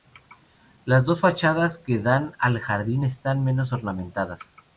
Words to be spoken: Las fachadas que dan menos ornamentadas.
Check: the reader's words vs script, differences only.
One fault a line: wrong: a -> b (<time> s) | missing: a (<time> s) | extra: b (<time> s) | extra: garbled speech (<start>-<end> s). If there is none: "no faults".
extra: dos (1.1 s)
extra: al jardín están (2.4 s)